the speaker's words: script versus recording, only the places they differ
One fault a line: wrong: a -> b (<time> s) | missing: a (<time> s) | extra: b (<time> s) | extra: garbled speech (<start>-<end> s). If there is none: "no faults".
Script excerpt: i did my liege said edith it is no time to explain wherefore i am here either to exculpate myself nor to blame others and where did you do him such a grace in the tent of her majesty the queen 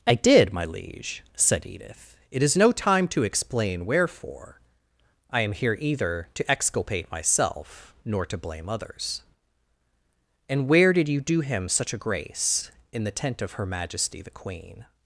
no faults